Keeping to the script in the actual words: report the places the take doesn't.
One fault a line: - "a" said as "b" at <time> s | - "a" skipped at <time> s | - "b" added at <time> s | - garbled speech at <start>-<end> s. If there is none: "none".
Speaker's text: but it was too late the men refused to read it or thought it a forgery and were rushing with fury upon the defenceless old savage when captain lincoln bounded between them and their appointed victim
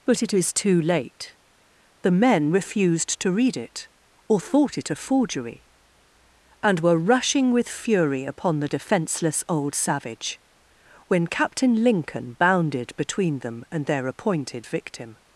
- "was" said as "is" at 0.3 s